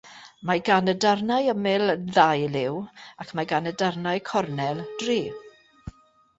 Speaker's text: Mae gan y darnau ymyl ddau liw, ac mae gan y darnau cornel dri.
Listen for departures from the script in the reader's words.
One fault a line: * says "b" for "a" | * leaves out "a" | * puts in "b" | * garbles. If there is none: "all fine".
all fine